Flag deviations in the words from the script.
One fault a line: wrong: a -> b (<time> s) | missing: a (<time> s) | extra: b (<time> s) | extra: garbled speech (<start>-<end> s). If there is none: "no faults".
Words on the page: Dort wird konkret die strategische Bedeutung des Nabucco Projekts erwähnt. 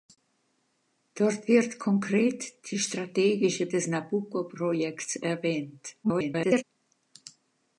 missing: Bedeutung (3.7 s)
extra: garbled speech (6.0-6.6 s)